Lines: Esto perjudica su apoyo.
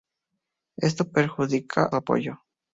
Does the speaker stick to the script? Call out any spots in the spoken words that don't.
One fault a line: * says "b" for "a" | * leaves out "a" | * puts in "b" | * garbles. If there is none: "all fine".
all fine